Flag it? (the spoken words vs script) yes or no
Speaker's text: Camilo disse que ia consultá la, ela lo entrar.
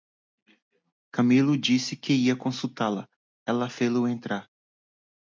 yes